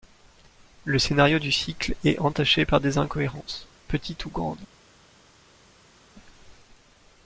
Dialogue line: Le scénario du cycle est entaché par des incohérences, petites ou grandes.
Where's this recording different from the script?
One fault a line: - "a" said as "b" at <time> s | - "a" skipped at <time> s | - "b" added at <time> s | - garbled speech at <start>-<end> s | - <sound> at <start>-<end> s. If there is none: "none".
none